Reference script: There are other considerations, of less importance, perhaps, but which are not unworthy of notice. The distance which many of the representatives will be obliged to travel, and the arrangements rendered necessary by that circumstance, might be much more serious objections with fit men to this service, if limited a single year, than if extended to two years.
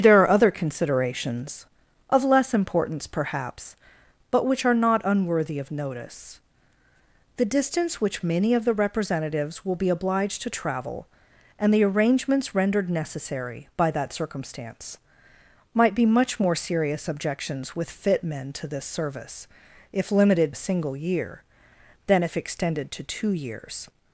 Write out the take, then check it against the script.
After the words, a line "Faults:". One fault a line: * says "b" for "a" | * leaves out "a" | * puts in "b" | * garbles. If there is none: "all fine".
There are other considerations, of less importance, perhaps, but which are not unworthy of notice. The distance which many of the representatives will be obliged to travel, and the arrangements rendered necessary by that circumstance, might be much more serious objections with fit men to this service, if limited a single year, than if extended to two years.
Faults:
all fine